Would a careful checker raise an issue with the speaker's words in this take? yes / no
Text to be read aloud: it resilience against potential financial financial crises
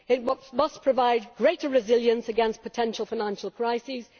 yes